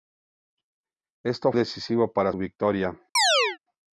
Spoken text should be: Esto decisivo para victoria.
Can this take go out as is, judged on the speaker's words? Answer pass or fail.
pass